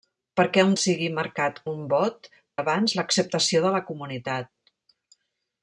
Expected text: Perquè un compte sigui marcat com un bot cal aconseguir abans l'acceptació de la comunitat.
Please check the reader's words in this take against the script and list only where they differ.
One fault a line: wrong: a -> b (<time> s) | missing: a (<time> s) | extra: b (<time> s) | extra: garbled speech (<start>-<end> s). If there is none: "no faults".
missing: compte (0.7 s)
missing: com (1.6 s)
missing: cal aconseguir (2.3 s)